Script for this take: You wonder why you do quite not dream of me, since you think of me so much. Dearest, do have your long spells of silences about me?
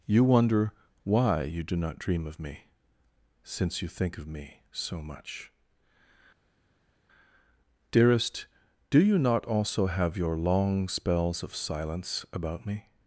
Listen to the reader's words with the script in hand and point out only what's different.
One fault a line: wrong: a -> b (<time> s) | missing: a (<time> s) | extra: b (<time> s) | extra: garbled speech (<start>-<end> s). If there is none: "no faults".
missing: quite (1.8 s)
extra: you not also (9.0 s)
wrong: silences -> silence (11.6 s)